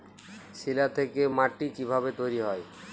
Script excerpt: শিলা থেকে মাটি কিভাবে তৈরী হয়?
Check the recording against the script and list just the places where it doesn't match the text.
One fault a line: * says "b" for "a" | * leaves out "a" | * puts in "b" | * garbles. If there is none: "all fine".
all fine